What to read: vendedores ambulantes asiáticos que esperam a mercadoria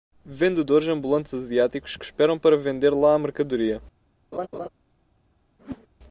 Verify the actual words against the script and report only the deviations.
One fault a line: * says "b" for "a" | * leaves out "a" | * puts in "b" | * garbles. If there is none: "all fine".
* puts in "para vender lá"